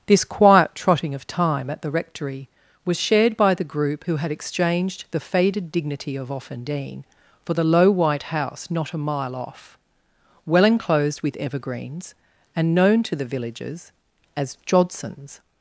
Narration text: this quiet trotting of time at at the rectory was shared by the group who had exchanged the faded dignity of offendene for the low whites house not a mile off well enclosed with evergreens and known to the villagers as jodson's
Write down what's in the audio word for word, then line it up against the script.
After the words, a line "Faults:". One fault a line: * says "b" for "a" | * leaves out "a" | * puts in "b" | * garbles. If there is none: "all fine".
this quiet trotting of time at the rectory was shared by the group who had exchanged the faded dignity of offendene for the low white house not a mile off well enclosed with evergreens and known to the villagers as jodson's
Faults:
* leaves out "at"
* says "white" for "whites"